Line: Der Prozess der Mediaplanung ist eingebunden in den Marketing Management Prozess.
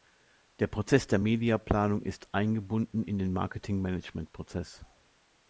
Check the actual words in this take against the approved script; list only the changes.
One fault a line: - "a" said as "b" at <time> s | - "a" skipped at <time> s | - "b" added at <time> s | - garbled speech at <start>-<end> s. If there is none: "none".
none